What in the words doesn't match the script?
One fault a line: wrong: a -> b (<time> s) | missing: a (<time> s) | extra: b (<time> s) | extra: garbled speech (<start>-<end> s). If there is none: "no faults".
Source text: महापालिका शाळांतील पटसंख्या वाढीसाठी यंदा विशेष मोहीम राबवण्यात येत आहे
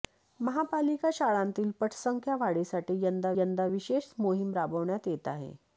extra: यंदा (3.4 s)